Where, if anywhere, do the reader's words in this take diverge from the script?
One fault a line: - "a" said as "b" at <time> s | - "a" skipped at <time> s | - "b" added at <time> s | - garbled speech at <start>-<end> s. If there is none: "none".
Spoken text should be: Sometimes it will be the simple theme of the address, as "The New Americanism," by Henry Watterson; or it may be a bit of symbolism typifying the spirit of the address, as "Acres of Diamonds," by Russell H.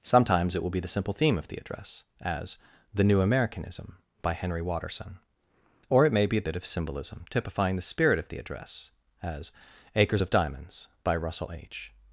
none